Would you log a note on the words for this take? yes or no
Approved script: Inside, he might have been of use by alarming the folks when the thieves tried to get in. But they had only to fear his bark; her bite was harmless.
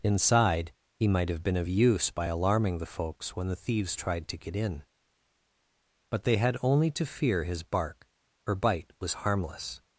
no